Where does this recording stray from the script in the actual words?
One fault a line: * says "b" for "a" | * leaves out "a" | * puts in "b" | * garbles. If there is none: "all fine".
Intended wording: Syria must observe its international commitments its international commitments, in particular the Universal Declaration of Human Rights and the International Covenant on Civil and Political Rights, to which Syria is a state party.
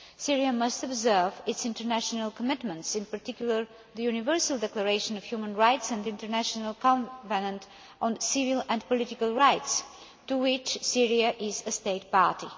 * leaves out "its international commitments"